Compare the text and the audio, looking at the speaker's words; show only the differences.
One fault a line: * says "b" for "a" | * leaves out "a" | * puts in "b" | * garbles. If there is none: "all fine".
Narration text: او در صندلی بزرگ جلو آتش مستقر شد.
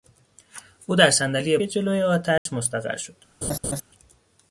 * leaves out "بزرگ"